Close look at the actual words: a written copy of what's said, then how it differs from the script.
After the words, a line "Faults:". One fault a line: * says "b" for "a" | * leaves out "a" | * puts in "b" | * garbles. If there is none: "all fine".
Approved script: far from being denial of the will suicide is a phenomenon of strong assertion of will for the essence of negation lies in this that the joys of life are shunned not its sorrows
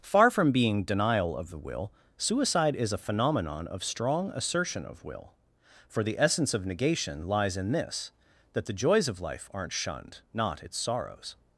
far from being denial of the will suicide is a phenomenon of strong assertion of will for the essence of negation lies in this that the joys of life aren't shunned not its sorrows
Faults:
* says "aren't" for "are"